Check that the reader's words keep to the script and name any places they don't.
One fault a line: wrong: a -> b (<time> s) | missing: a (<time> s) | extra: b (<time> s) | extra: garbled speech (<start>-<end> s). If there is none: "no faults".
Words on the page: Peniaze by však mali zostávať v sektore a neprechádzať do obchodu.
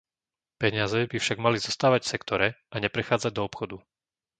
no faults